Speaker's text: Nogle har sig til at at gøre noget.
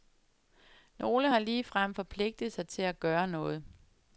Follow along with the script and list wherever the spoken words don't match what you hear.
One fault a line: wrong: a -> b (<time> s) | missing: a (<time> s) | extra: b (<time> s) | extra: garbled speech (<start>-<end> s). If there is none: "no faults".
extra: ligefrem forpligtet (1.4 s)
missing: at (3.0 s)